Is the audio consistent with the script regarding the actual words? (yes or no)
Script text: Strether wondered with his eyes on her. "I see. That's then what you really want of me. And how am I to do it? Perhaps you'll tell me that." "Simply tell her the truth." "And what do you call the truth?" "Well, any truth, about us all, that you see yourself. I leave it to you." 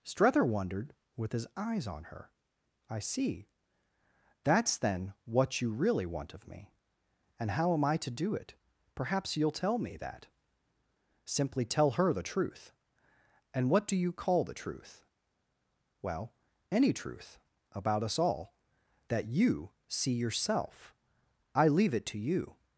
yes